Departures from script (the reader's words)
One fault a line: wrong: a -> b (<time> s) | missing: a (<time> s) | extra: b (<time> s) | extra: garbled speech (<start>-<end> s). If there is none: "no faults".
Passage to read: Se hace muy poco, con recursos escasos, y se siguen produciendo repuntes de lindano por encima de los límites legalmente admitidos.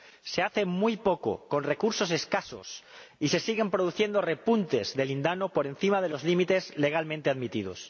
no faults